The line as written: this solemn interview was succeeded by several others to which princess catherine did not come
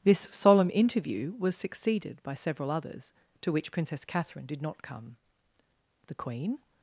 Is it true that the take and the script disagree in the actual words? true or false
true